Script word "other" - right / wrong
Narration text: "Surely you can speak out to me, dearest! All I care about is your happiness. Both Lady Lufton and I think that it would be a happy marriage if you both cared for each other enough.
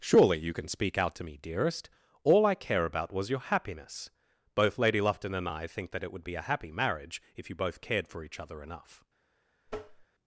right